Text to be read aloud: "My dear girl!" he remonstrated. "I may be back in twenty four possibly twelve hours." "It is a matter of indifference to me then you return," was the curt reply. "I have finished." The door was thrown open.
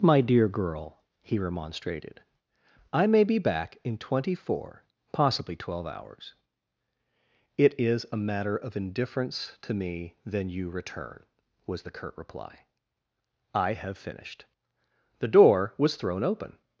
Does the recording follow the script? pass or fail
pass